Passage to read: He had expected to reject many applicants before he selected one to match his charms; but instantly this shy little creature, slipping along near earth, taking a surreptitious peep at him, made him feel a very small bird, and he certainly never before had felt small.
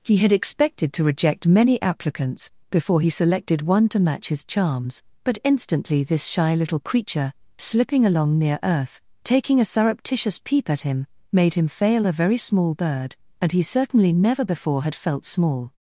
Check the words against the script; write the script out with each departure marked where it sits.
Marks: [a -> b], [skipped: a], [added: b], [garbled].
He had expected to reject many applicants before he selected one to match his charms; but instantly this shy little creature, slipping along near earth, taking a surreptitious peep at him, made him [feel -> fail] a very small bird, and he certainly never before had felt small.